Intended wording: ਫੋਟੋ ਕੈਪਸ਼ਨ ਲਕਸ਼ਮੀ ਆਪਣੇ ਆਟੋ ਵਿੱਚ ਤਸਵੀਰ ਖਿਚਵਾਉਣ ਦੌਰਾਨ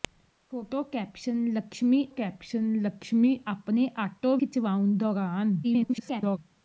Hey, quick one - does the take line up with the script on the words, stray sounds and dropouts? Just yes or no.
no